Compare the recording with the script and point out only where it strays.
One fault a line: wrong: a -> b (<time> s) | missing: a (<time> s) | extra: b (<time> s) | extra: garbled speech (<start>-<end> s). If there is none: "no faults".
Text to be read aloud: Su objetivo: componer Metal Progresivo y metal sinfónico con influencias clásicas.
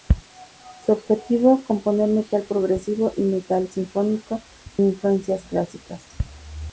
missing: con (4.4 s)